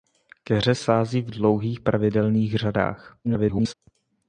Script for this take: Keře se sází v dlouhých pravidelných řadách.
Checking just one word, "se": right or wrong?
wrong